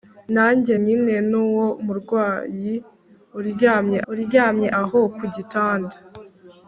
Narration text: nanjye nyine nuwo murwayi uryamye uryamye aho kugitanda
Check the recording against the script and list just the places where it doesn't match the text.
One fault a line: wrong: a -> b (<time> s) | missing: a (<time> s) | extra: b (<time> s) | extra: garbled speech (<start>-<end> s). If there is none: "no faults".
no faults